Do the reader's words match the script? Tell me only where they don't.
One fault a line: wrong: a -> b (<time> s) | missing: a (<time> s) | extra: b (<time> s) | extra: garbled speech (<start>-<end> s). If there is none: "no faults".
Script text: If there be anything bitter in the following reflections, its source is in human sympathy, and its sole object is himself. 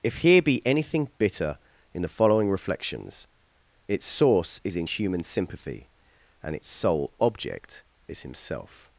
wrong: there -> here (0.2 s)